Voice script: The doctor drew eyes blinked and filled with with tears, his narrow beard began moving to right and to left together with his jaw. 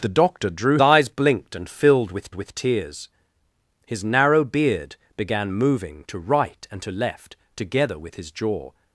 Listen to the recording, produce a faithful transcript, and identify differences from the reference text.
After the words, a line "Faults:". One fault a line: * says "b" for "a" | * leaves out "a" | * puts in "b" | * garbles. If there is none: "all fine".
The doctor drew eyes blinked and filled with with tears, his narrow beard began moving to right and to left together with his jaw.
Faults:
all fine